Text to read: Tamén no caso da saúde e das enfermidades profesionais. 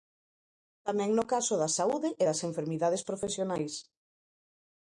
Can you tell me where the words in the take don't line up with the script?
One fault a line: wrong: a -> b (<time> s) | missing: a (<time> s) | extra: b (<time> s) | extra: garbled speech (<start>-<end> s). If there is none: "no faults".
no faults